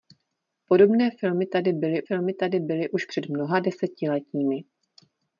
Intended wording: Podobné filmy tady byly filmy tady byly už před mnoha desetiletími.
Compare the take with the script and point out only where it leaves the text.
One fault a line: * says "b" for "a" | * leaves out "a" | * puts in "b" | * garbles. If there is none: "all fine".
all fine